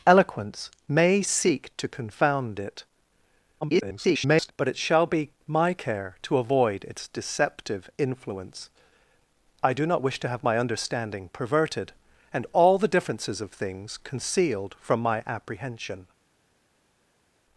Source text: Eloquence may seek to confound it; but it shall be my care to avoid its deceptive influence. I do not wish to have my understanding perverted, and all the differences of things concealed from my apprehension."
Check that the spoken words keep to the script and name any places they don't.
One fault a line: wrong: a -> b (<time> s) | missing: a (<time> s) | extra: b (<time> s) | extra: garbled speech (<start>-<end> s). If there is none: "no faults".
extra: garbled speech (3.6-4.5 s)